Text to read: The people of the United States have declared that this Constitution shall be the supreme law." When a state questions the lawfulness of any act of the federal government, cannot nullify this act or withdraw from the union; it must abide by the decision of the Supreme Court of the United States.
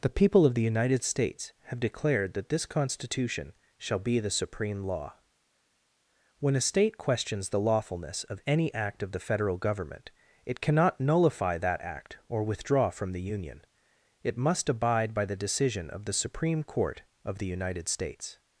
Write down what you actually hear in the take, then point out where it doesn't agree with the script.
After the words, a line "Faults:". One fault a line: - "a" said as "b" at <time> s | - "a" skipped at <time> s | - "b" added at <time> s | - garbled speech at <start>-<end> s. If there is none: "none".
The people of the United States have declared that this Constitution shall be the supreme law." When a state questions the lawfulness of any act of the federal government, it cannot nullify that act or withdraw from the union; it must abide by the decision of the Supreme Court of the United States.
Faults:
- "it" added at 10.4 s
- "this" said as "that" at 11.6 s